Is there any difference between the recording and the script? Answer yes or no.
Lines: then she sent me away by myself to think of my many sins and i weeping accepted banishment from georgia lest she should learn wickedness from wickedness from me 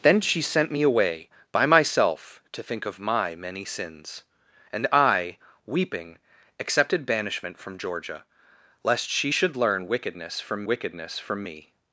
no